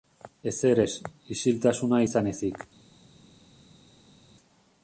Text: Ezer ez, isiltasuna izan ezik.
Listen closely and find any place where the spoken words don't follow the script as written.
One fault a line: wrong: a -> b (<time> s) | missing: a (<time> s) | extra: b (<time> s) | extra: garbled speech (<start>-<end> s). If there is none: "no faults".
no faults